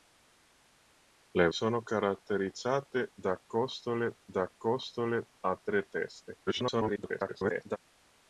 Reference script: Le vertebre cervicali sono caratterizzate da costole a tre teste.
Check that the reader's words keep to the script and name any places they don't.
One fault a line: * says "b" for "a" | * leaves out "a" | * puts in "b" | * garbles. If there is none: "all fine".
* says "sono caratterizzate da costole" for "vertebre cervicali sono caratterizzate"
* garbles